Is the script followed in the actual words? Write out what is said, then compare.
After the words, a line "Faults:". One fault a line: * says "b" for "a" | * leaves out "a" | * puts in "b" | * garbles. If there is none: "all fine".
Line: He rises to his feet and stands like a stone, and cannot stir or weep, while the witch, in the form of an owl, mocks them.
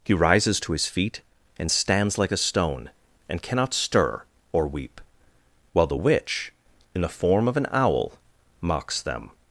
He rises to his feet and stands like a stone, and cannot stir or weep, while the witch, in the form of an owl, mocks them.
Faults:
all fine